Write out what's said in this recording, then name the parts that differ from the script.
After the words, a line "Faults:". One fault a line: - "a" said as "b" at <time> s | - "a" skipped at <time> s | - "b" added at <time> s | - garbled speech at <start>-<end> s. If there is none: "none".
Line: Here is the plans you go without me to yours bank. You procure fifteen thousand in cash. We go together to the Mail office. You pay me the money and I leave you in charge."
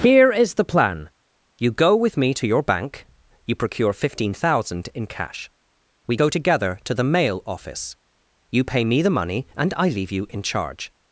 Here is the plan you go with me to your bank. You procure fifteen thousand in cash. We go together to the Mail office. You pay me the money and I leave you in charge."
Faults:
- "plans" said as "plan" at 0.7 s
- "without" said as "with" at 1.9 s
- "yours" said as "your" at 2.5 s